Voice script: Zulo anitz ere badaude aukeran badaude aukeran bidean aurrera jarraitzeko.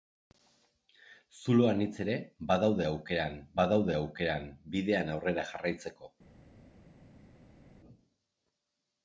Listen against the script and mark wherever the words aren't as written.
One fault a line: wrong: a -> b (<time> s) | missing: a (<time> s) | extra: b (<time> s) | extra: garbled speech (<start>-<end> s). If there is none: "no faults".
no faults